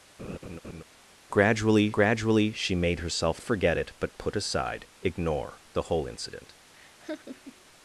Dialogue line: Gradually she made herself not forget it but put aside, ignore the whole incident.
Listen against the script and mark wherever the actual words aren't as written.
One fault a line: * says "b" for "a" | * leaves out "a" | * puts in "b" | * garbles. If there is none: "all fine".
* puts in "gradually"
* leaves out "not"